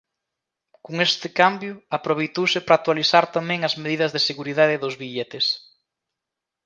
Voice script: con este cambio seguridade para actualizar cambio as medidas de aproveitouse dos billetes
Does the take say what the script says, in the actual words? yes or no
no